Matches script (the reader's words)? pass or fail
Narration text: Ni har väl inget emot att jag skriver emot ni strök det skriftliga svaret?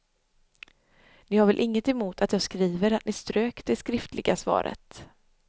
fail